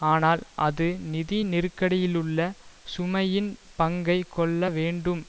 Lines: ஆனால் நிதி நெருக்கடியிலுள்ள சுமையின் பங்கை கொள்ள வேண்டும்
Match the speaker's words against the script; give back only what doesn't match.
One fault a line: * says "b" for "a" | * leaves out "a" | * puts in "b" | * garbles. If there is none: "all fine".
* puts in "அது"